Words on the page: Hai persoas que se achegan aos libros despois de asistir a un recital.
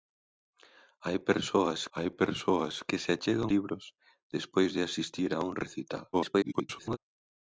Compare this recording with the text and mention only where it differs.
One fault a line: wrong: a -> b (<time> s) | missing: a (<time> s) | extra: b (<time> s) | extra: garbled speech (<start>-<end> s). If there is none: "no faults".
extra: hai persoas (2.0 s)
missing: aos (3.5 s)
extra: garbled speech (6.1-7.0 s)